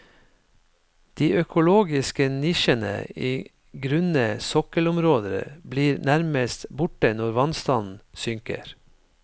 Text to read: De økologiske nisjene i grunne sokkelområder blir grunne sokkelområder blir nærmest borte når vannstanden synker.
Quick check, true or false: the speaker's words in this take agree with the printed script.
false